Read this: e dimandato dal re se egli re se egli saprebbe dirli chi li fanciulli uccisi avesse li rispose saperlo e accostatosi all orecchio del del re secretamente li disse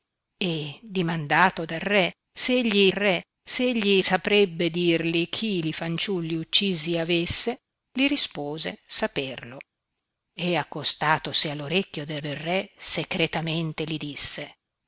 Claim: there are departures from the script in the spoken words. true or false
false